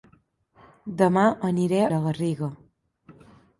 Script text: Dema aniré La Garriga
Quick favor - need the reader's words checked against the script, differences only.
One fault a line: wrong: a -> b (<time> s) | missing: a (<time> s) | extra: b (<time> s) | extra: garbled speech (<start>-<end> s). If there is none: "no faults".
no faults